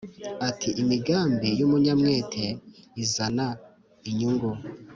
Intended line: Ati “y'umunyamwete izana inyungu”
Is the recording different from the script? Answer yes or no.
yes